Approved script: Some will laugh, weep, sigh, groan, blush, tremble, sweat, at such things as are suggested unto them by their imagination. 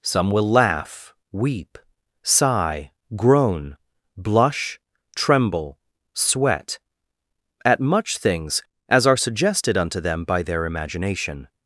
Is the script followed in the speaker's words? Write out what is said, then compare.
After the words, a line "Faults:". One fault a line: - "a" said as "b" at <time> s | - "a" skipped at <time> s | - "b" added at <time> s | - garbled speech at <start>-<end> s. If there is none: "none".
Some will laugh, weep, sigh, groan, blush, tremble, sweat, at much things as are suggested unto them by their imagination.
Faults:
- "such" said as "much" at 7.8 s